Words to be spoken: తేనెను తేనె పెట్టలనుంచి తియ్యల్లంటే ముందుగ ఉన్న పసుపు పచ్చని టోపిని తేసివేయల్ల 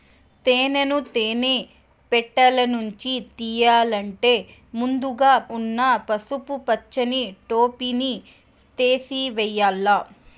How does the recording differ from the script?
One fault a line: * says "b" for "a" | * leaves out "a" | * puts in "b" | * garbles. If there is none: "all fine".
all fine